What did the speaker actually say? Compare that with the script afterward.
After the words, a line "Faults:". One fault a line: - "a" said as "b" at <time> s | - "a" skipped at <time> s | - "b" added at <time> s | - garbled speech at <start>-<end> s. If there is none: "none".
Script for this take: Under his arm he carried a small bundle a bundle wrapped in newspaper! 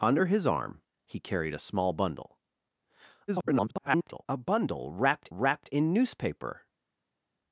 Under his arm he carried a small bundle [garbled] a bundle wrapped wrapped in newspaper!
Faults:
- garbled speech at 3.3-4.3 s
- "wrapped" added at 5.3 s